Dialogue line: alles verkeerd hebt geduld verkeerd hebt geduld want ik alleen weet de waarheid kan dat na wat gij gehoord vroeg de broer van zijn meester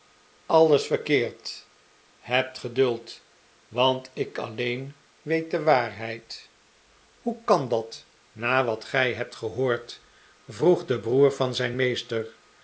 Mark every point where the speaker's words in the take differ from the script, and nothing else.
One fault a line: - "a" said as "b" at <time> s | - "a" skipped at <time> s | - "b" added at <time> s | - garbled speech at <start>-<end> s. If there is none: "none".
- "verkeerd hebt geduld" skipped at 3.2 s
- "hoe" added at 7.2 s
- "hebt" added at 9.1 s